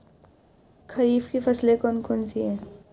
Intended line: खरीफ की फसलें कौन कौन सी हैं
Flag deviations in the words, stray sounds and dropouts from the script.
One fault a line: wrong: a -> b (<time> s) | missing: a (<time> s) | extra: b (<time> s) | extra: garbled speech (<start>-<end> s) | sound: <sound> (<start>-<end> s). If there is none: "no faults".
no faults